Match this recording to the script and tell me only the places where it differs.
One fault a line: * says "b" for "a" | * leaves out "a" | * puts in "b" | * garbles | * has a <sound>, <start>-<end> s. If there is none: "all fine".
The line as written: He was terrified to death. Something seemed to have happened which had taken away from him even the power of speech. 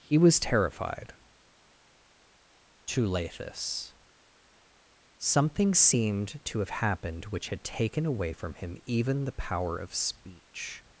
* says "lathis" for "death"